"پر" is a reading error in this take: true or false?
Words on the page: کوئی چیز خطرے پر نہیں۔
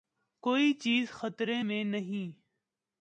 true